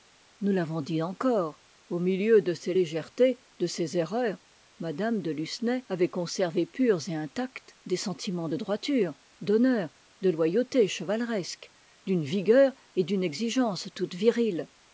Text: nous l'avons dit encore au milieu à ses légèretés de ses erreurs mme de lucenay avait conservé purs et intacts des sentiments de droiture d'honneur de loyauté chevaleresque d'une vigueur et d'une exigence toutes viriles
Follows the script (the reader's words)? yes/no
no